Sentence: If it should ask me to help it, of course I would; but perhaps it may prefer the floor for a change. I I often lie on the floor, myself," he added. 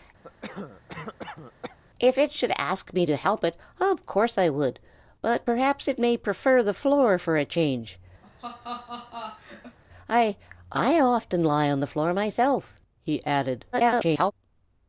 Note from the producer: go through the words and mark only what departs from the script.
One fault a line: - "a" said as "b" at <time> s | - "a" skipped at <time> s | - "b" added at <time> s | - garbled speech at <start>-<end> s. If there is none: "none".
- garbled speech at 13.7-14.3 s